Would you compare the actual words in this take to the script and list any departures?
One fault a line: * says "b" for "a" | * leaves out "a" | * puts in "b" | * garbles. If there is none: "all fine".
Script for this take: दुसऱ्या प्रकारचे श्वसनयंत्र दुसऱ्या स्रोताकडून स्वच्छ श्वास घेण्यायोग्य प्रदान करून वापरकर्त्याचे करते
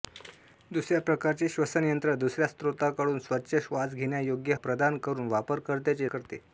all fine